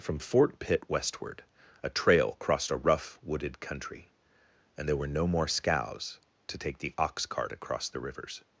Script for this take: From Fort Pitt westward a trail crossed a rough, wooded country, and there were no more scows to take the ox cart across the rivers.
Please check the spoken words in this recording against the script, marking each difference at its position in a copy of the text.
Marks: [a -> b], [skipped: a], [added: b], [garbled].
From Fort Pitt westward a trail crossed a rough, wooded country, and there were no more scows to take the ox cart across the rivers.